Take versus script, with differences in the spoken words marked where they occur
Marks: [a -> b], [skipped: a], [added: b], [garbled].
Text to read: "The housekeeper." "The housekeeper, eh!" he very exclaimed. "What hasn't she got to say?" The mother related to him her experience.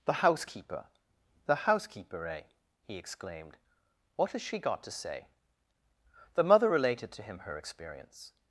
"The housekeeper." "The housekeeper, eh!" he [skipped: very] exclaimed. "What [hasn't -> has] she got to say?" The mother related to him her experience.